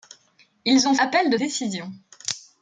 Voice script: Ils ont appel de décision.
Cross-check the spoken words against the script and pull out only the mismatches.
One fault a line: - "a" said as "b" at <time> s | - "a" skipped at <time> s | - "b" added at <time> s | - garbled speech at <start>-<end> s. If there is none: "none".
none